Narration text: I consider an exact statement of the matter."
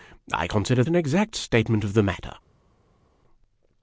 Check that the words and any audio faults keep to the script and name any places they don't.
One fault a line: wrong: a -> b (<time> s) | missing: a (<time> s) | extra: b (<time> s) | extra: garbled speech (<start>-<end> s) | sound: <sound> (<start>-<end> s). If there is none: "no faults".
no faults